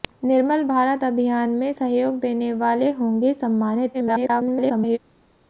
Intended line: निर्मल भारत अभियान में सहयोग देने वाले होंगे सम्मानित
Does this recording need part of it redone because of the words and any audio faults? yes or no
yes